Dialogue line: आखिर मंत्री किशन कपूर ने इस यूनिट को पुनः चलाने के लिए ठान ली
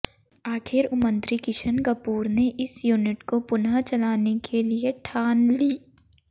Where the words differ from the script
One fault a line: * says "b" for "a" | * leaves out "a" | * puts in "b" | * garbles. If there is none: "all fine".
all fine